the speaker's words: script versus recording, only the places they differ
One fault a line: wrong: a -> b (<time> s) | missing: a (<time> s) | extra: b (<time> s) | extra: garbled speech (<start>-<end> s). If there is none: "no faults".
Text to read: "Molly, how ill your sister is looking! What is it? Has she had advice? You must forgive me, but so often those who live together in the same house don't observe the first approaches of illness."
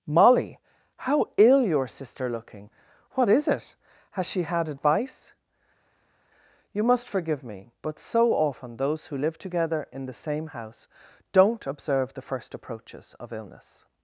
missing: is (2.3 s)